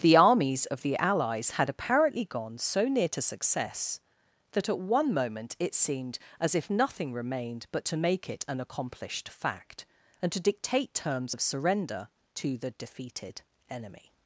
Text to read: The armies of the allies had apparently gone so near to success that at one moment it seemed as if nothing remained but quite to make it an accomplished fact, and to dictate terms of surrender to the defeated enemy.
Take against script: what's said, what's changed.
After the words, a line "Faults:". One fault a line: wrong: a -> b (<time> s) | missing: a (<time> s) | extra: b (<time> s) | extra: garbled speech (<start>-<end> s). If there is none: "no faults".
The armies of the allies had apparently gone so near to success that at one moment it seemed as if nothing remained but to make it an accomplished fact, and to dictate terms of surrender to the defeated enemy.
Faults:
missing: quite (7.8 s)